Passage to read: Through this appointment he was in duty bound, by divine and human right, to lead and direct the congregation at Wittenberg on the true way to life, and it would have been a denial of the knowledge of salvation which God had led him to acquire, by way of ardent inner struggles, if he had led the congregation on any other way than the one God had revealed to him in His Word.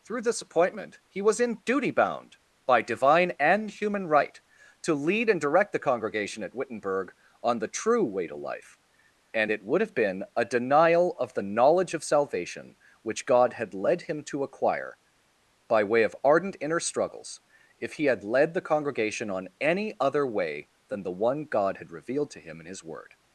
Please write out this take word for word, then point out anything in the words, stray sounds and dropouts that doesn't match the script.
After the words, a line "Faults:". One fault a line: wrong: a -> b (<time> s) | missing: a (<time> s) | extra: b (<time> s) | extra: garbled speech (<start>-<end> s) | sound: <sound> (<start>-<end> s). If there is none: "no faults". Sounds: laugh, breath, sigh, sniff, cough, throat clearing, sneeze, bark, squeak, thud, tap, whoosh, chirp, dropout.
Through this appointment he was in duty bound, by divine and human right, to lead and direct the congregation at Wittenberg on the true way to life, and it would have been a denial of the knowledge of salvation which God had led him to acquire, by way of ardent inner struggles, if he had led the congregation on any other way than the one God had revealed to him in His Word.
Faults:
no faults